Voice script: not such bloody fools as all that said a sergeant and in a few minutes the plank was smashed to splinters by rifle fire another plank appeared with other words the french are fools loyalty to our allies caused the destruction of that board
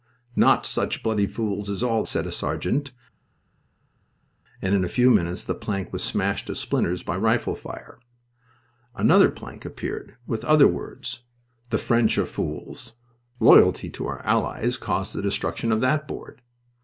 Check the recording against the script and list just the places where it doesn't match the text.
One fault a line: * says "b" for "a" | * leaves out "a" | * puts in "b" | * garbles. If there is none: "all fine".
* leaves out "that"